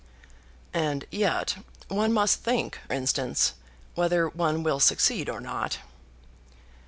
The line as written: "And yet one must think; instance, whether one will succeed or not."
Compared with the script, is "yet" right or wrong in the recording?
right